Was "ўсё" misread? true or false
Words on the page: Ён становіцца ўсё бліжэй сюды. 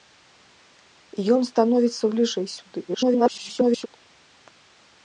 true